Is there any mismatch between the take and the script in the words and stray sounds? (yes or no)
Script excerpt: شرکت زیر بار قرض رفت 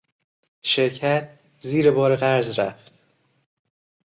no